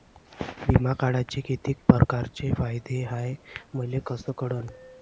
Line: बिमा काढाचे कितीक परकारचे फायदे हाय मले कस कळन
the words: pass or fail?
pass